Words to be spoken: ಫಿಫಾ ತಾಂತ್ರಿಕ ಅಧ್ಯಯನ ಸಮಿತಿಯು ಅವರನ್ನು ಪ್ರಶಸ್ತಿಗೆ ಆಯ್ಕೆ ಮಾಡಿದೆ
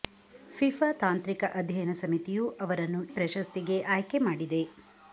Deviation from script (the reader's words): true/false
false